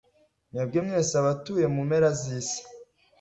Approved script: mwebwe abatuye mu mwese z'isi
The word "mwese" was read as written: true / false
false